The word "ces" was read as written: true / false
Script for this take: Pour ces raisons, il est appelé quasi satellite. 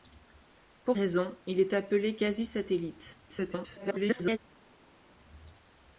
false